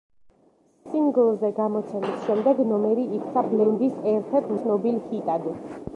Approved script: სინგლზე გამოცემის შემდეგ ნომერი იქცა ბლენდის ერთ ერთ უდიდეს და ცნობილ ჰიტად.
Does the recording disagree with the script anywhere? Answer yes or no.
yes